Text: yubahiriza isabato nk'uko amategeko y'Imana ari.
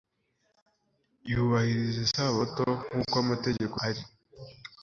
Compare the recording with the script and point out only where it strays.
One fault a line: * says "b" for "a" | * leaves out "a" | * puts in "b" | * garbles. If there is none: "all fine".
* leaves out "y'Imana"